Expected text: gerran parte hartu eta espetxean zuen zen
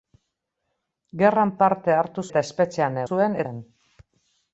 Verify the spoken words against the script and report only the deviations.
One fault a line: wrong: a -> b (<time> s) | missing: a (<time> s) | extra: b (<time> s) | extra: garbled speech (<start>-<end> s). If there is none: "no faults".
no faults